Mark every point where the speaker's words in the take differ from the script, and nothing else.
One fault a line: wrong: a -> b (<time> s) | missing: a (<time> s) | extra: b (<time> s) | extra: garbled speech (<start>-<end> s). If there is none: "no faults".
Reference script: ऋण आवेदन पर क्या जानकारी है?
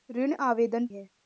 missing: पर क्या जानकारी (0.9 s)